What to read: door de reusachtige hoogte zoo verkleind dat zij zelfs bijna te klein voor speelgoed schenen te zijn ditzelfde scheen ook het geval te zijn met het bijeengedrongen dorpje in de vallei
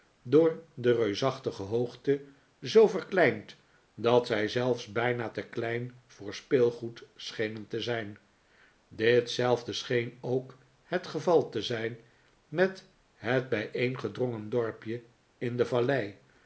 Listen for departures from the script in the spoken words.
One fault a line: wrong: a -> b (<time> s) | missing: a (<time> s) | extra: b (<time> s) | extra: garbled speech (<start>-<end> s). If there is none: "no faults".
no faults